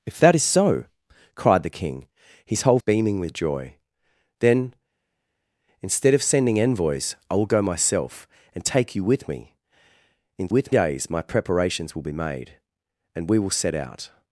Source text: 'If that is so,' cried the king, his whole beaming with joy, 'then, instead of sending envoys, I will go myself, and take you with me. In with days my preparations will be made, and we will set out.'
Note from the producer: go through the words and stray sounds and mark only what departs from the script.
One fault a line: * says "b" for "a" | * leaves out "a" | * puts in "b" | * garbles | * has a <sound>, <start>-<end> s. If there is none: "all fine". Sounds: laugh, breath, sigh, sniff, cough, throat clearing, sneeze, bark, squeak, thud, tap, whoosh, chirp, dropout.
all fine